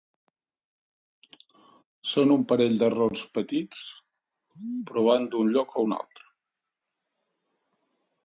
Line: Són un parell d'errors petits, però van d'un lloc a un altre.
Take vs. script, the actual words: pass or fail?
pass